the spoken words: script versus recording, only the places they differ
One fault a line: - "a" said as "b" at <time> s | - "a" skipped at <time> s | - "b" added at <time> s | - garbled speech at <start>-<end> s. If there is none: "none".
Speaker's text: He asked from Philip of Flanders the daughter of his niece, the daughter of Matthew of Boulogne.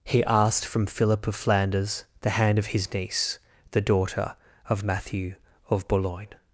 - "daughter" said as "hand" at 2.4 s